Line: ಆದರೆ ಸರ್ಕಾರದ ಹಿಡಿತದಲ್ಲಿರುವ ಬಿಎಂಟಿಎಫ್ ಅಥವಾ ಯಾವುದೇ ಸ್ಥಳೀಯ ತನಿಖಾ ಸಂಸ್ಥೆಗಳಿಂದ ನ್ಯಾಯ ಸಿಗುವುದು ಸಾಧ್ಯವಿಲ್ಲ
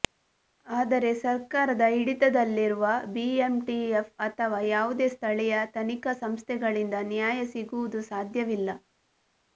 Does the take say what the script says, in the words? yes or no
yes